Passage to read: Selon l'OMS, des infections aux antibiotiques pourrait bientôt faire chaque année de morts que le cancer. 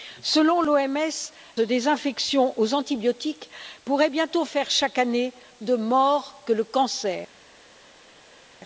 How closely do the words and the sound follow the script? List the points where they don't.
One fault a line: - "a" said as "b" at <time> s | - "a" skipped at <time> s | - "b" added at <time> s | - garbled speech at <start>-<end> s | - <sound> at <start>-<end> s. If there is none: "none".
none